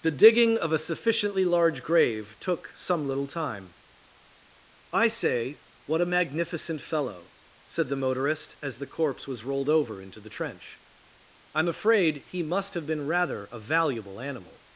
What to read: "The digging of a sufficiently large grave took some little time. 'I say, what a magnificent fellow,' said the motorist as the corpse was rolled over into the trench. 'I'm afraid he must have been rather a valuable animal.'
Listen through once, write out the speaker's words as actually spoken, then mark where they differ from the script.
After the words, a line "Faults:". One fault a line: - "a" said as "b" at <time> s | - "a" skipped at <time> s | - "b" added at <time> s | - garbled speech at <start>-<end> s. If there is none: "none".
"The digging of a sufficiently large grave took some little time. 'I say, what a magnificent fellow,' said the motorist as the corpse was rolled over into the trench. 'I'm afraid he must have been rather a valuable animal.'
Faults:
none